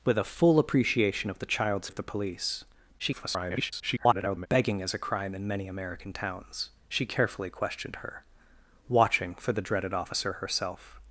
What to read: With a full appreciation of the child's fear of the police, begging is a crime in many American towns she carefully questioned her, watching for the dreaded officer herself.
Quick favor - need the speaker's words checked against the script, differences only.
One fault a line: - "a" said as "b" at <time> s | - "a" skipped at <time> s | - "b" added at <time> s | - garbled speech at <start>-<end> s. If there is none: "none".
- "fear" skipped at 1.9 s
- garbled speech at 3.0-4.5 s